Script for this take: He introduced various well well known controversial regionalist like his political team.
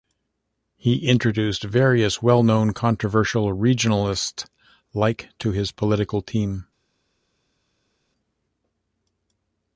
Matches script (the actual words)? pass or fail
fail